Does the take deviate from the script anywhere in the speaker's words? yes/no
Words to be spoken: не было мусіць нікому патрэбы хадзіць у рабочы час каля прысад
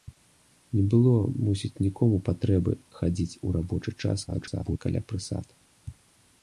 yes